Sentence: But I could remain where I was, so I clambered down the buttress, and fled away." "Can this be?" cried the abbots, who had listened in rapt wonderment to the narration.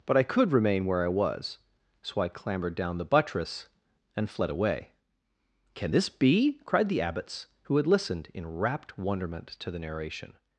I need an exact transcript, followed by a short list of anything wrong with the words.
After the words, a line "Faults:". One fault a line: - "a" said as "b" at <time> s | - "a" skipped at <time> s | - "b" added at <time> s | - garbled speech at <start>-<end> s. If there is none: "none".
But I could remain where I was, so I clambered down the buttress, and fled away." "Can this be?" cried the abbots, who had listened in rapt wonderment to the narration.
Faults:
none